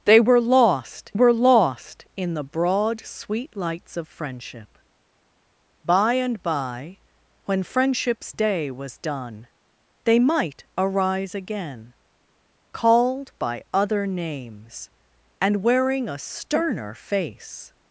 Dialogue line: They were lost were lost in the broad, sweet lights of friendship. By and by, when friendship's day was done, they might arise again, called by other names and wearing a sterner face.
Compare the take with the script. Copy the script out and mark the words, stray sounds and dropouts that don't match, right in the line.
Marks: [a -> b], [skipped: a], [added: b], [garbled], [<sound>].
They were lost were lost in the broad, sweet lights of friendship. By and by, when friendship's day was done, they might arise again, called by other names and wearing a sterner face.